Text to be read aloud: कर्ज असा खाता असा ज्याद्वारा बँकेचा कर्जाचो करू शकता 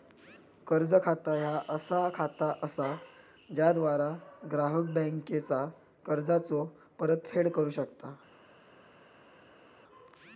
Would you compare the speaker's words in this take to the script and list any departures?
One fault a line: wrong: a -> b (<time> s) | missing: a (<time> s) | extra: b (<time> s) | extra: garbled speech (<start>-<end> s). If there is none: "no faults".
extra: खाता ह्या (1.0 s)
extra: ग्राहक (4.5 s)
extra: परतफेड (7.0 s)